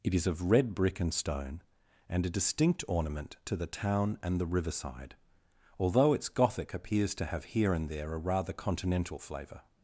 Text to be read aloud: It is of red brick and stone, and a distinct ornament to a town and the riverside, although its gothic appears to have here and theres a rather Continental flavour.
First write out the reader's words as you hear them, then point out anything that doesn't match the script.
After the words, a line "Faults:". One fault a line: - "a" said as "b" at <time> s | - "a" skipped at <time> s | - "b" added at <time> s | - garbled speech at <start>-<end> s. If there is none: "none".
It is of red brick and stone, and a distinct ornament to the town and the riverside, although its gothic appears to have here and there a rather Continental flavour.
Faults:
- "a" said as "the" at 3.5 s
- "theres" said as "there" at 7.9 s